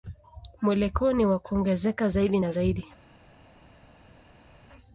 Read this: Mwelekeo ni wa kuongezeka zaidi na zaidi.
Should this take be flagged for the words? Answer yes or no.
no